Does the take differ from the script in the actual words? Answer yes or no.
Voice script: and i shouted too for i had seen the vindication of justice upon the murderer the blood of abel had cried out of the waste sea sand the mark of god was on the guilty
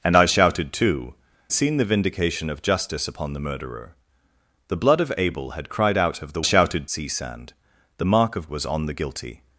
yes